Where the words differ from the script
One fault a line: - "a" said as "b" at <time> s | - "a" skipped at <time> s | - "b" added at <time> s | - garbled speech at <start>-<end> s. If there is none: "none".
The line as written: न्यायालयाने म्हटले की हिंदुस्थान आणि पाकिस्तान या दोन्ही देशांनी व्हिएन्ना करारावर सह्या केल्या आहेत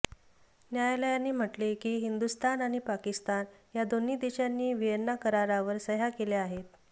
none